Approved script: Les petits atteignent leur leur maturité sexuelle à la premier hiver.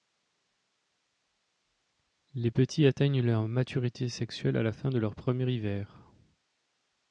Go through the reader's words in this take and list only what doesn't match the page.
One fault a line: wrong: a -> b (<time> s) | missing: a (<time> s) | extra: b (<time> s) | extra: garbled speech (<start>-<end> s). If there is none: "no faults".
missing: leur (3.5 s)
extra: fin de leur (4.7 s)